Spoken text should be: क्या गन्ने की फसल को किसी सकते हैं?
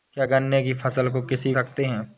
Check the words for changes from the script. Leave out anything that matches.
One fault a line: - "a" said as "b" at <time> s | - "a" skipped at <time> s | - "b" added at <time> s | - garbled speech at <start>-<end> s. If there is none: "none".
none